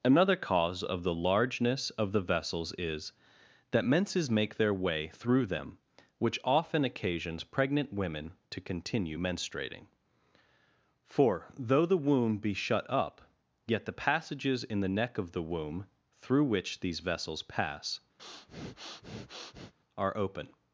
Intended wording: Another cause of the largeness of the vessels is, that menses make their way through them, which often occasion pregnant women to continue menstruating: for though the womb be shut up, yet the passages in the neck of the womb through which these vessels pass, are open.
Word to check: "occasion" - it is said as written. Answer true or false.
false